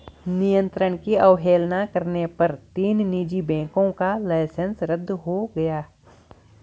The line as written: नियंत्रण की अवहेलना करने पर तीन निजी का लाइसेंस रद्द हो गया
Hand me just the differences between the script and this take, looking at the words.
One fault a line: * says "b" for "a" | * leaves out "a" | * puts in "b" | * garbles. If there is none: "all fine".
* puts in "बैंकों"